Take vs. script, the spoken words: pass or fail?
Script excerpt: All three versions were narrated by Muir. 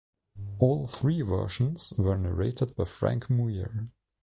fail